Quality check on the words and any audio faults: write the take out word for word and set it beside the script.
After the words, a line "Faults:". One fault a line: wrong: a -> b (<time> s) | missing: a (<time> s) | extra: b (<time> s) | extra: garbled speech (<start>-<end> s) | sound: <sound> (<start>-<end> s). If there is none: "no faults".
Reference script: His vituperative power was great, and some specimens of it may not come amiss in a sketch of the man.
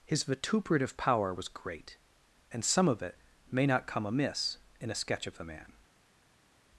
His vituperative power was great, and some of it may not come amiss in a sketch of the man.
Faults:
missing: specimens (2.9 s)